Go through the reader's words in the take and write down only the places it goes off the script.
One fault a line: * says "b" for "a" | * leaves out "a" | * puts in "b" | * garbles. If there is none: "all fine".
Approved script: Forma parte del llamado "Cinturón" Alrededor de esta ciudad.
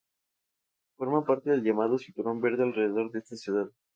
* puts in "Verde"